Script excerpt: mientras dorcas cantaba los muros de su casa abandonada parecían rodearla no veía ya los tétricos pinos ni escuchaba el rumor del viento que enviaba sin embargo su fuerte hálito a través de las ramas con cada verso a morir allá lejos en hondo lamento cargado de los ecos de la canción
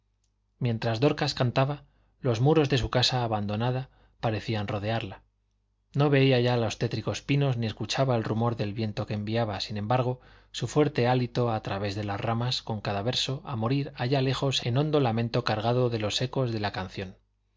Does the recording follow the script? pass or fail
pass